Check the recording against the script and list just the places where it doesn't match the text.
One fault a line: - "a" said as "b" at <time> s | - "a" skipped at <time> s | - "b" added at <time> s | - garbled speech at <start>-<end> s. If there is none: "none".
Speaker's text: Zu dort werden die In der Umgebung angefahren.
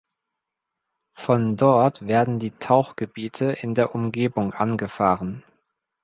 - "Zu" said as "Von" at 1.1 s
- "Tauchgebiete" added at 2.5 s